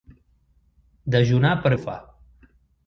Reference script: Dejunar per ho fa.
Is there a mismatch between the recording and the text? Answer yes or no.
no